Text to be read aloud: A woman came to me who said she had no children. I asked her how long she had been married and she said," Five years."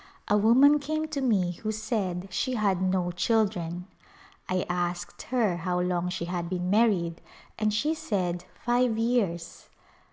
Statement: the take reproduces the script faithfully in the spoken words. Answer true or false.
true